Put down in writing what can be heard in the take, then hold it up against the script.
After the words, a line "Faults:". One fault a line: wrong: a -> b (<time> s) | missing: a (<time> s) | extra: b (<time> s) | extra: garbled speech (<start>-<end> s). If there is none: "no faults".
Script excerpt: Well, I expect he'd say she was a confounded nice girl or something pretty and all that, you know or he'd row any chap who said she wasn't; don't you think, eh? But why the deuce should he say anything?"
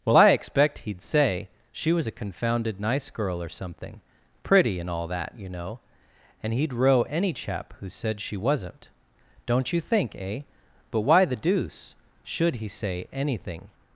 Well, I expect he'd say she was a confounded nice girl or something pretty and all that, you know and he'd row any chap who said she wasn't; don't you think, eh? But why the deuce should he say anything?"
Faults:
wrong: or -> and (6.4 s)